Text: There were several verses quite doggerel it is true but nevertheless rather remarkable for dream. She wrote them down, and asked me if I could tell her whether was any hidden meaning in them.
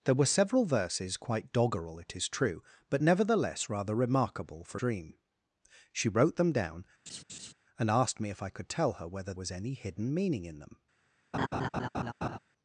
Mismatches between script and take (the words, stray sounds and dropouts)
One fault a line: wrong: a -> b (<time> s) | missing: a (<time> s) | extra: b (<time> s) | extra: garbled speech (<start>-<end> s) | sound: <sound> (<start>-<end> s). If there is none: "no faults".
sound: laugh (7.1-7.5 s)
sound: laugh (11.3-12.4 s)